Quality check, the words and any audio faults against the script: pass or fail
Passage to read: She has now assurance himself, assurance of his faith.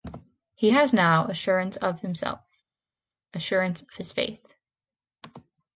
fail